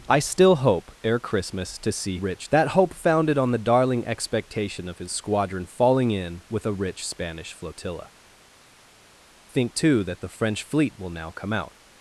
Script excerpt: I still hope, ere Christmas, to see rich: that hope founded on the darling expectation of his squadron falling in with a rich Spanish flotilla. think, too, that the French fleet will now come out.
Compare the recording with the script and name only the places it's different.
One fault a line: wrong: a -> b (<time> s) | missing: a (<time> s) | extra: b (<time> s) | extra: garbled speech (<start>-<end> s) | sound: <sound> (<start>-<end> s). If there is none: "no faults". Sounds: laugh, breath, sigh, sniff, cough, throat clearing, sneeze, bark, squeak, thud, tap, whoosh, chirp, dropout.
no faults